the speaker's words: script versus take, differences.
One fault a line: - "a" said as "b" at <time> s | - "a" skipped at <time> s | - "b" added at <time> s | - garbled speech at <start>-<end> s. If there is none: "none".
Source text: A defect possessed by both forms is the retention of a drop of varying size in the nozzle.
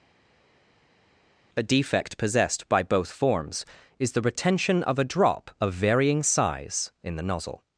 none